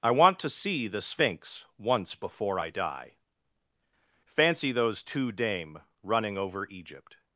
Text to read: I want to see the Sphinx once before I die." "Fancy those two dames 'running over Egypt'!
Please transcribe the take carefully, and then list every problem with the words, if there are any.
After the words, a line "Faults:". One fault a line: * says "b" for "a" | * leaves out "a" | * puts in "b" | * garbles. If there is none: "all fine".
I want to see the Sphinx once before I die." "Fancy those two dame 'running over Egypt'!
Faults:
* says "dame" for "dames"